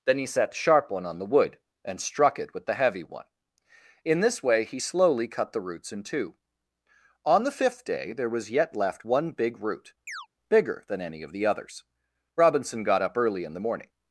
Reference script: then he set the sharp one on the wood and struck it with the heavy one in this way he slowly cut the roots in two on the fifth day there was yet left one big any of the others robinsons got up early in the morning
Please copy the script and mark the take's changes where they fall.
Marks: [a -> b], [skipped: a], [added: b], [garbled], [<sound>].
then he set the sharp one on the wood and struck it with the heavy one in this way he slowly cut the roots in two on the fifth day there was yet left one big [added: root bigger than] [chirp] any of the others [robinsons -> robinson] got up early in the morning